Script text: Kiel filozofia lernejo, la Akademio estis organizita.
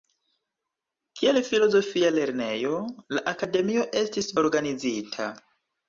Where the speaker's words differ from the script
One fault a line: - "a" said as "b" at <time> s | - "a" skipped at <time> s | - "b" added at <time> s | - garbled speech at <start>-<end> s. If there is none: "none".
none